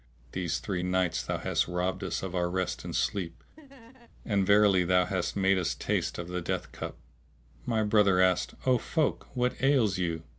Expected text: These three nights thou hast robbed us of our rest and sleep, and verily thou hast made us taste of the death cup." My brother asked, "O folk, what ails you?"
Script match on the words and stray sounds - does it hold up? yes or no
no